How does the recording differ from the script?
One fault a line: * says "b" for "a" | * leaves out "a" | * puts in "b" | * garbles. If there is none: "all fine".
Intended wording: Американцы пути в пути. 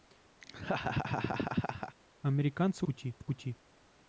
all fine